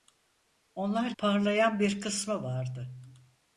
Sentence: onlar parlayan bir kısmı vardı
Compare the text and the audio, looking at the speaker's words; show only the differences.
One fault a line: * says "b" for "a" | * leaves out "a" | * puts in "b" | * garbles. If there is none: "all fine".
all fine